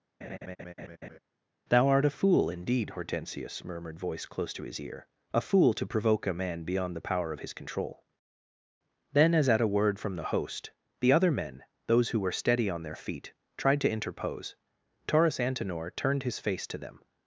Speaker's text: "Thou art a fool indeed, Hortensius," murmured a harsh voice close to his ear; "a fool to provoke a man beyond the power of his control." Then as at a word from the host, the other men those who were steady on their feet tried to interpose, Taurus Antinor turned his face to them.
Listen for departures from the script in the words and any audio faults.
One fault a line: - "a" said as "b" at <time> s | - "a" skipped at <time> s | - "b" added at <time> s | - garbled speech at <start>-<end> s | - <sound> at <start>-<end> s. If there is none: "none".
- laugh at 0.2-1.2 s
- "a harsh" skipped at 4.0 s